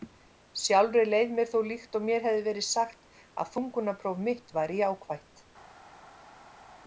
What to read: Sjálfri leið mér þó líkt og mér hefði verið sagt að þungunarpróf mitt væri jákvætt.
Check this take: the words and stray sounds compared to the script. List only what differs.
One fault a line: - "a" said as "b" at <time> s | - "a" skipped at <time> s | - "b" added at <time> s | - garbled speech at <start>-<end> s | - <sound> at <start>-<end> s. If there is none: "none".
none